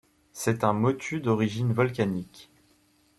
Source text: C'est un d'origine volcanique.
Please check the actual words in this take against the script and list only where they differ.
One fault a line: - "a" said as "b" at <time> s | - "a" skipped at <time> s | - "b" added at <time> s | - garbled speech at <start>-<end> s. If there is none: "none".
- "motu" added at 0.7 s